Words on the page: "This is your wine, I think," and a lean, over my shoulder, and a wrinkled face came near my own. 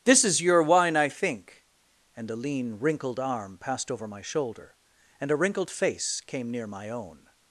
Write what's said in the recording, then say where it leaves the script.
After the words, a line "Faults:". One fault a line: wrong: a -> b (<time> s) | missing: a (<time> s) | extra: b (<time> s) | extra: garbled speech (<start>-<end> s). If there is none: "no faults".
"This is your wine, I think," and a lean, wrinkled arm passed over my shoulder, and a wrinkled face came near my own.
Faults:
extra: wrinkled arm passed (2.8 s)